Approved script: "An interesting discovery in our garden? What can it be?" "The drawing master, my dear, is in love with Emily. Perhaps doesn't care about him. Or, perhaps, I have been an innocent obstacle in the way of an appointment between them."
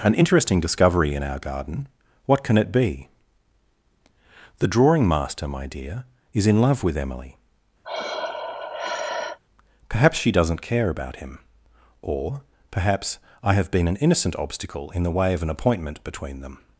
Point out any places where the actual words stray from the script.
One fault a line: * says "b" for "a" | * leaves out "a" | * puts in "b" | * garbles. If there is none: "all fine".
* puts in "she"